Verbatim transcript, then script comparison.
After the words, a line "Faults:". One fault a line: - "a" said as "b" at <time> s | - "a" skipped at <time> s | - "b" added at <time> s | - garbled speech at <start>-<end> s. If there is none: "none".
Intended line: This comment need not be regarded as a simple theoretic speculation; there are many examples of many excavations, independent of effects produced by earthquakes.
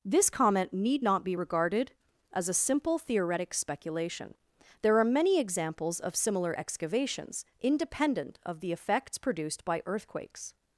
This comment need not be regarded as a simple theoretic speculation; there are many examples of similar excavations, independent of the effects produced by earthquakes.
Faults:
- "many" said as "similar" at 6.2 s
- "the" added at 8.6 s